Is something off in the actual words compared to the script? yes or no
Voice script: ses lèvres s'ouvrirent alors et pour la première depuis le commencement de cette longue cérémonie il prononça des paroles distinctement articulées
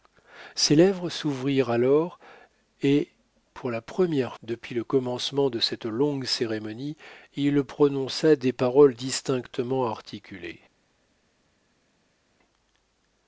no